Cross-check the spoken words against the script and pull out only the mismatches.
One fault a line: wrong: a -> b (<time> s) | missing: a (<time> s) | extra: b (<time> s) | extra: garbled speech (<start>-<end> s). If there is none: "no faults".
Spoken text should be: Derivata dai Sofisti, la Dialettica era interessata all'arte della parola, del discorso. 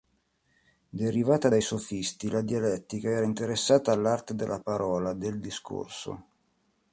no faults